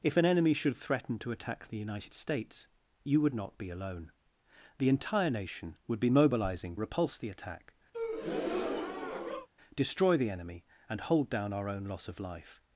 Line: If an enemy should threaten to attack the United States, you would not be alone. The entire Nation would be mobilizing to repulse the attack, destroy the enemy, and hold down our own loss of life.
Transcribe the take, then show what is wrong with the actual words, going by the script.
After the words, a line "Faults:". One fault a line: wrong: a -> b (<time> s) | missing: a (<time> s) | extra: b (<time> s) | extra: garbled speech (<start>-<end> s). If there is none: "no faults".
If an enemy should threaten to attack the United States, you would not be alone. The entire Nation would be mobilizing repulse the attack, destroy the enemy, and hold down our own loss of life.
Faults:
missing: to (6.8 s)